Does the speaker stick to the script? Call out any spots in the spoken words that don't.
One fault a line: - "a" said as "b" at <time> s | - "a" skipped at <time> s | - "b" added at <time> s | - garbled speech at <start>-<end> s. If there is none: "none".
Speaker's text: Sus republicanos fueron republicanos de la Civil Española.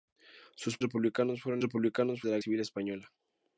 none